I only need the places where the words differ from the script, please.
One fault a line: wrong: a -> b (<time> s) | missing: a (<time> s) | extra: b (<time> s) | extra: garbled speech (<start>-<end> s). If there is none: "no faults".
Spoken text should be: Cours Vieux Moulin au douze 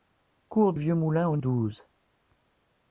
no faults